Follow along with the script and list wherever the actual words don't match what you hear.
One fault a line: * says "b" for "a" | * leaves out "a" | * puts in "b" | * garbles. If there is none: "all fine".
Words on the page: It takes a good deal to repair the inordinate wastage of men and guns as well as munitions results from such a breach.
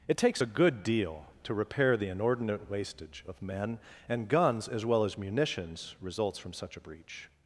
all fine